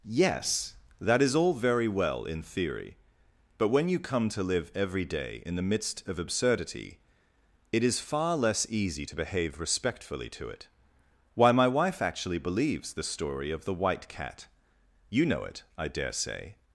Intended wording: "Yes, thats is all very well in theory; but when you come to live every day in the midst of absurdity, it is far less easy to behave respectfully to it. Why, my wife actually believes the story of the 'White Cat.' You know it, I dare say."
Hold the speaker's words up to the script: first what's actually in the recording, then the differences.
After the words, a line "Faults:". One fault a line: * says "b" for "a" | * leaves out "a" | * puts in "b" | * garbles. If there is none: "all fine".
"Yes, that is all very well in theory; but when you come to live every day in the midst of absurdity, it is far less easy to behave respectfully to it. Why, my wife actually believes the story of the 'White Cat.' You know it, I dare say."
Faults:
* says "that" for "thats"